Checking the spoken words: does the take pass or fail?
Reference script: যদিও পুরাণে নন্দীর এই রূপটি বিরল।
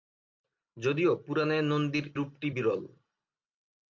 fail